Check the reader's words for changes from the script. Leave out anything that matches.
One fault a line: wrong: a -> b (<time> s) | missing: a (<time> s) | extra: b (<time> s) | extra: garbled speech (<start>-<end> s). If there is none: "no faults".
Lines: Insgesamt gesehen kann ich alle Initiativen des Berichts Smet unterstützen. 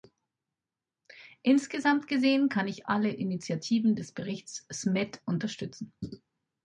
no faults